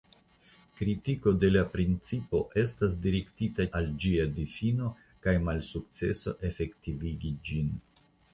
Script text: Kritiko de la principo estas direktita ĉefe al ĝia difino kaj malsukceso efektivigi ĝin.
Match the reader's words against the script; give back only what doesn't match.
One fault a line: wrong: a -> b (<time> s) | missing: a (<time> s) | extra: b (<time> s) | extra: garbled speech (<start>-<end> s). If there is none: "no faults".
missing: ĉefe (3.7 s)